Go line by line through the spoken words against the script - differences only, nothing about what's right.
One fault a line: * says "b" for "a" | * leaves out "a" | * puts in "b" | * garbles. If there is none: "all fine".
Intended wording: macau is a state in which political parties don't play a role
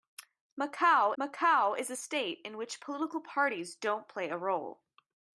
* puts in "macau"